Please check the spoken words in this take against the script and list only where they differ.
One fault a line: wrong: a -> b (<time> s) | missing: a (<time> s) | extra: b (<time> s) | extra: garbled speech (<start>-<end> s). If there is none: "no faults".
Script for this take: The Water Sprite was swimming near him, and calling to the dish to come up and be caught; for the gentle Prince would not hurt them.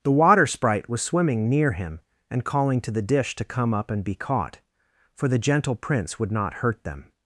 no faults